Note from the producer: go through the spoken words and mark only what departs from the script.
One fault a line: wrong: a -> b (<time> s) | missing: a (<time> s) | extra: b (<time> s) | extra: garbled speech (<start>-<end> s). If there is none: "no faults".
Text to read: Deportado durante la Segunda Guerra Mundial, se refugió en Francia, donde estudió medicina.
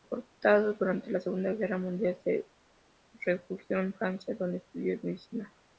no faults